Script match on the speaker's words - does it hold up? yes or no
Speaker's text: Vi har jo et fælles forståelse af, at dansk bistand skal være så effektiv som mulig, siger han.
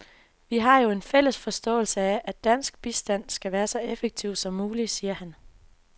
no